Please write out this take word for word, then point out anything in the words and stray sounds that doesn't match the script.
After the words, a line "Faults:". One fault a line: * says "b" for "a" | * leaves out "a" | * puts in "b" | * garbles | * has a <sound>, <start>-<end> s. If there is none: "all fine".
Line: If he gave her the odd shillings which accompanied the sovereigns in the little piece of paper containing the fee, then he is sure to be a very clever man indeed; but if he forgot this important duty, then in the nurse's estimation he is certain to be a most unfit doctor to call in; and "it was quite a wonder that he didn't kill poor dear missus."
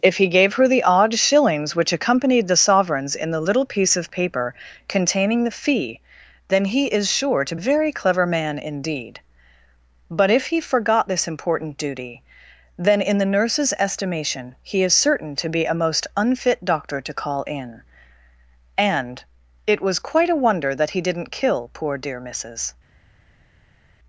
If he gave her the odd shillings which accompanied the sovereigns in the little piece of paper containing the fee, then he is sure to a very clever man indeed; but if he forgot this important duty, then in the nurse's estimation he is certain to be a most unfit doctor to call in; and "it was quite a wonder that he didn't kill poor dear missus."
Faults:
* leaves out "be"